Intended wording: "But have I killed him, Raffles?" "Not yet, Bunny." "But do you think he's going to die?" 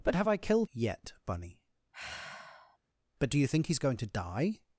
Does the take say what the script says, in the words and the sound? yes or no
no